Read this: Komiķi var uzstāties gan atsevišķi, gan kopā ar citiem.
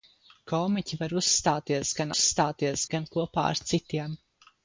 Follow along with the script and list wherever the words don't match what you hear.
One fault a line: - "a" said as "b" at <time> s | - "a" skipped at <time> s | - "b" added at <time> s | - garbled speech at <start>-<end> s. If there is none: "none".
- "atsevišķi" said as "uzstāties" at 2.1 s